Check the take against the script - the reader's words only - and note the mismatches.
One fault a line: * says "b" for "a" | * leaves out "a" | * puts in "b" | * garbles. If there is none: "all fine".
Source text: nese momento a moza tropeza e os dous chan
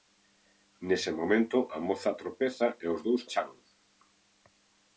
all fine